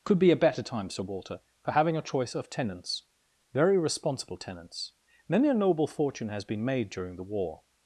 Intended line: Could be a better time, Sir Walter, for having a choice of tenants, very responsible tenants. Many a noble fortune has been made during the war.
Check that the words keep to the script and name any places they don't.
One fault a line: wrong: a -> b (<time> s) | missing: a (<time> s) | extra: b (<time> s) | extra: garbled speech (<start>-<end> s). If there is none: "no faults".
no faults